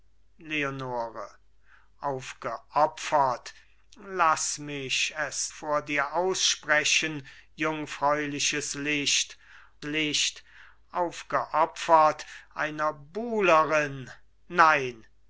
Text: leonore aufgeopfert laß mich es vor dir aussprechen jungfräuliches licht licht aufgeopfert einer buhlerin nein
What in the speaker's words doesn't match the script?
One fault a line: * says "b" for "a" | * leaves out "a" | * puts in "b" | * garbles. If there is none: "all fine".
all fine